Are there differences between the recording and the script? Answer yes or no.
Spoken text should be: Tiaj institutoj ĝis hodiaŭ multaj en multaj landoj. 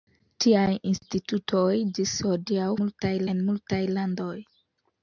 no